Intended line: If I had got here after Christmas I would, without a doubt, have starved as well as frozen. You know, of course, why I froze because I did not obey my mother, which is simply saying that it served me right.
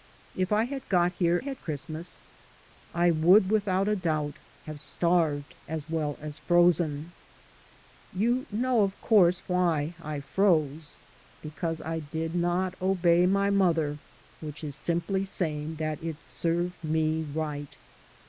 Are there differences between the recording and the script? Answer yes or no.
yes